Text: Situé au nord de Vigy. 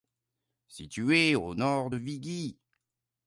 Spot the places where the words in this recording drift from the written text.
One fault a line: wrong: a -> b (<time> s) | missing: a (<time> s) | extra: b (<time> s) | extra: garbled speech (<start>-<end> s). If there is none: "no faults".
no faults